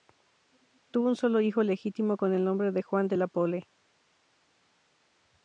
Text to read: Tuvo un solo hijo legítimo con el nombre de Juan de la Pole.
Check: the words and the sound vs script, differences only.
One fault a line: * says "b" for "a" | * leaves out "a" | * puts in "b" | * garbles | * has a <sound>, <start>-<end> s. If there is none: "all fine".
all fine